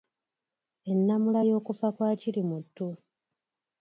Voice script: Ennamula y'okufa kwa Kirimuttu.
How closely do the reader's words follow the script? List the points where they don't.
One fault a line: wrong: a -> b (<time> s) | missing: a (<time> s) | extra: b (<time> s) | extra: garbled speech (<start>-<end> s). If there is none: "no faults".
no faults